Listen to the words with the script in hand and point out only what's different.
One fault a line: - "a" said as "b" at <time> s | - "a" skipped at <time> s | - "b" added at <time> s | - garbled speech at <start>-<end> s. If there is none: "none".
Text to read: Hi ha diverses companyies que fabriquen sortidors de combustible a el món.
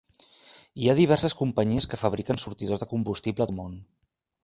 none